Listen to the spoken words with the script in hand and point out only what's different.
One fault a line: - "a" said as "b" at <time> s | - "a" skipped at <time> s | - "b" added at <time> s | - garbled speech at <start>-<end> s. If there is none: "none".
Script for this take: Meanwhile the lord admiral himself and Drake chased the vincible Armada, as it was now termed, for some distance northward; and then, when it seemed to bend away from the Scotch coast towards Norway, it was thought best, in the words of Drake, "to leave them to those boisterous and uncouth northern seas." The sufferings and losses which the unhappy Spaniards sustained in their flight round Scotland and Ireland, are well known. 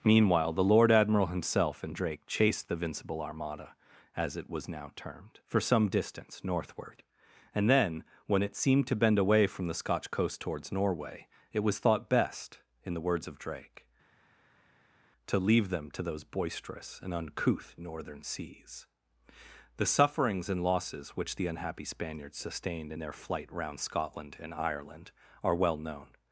none